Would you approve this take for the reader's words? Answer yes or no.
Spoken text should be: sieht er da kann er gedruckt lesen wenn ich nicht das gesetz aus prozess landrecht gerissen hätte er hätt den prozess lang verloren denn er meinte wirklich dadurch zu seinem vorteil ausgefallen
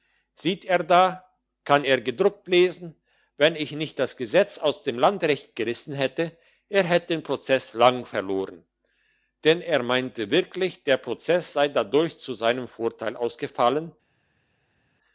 no